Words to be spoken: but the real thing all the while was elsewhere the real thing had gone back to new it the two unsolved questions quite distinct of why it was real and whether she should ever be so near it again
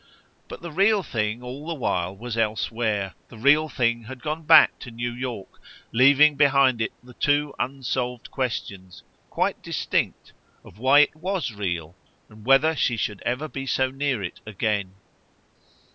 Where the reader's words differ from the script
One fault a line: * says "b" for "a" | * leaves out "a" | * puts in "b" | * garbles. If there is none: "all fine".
* puts in "york leaving behind"